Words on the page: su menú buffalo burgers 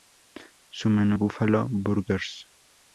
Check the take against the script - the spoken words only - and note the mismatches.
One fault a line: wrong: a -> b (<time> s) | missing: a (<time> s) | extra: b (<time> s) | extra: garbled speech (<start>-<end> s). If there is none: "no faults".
no faults